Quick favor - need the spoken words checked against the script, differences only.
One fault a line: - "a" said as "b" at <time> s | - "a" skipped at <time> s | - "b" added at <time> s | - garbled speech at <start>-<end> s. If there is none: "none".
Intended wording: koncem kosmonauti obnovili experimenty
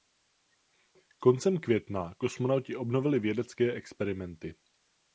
- "května" added at 1.6 s
- "vědecké" added at 3.2 s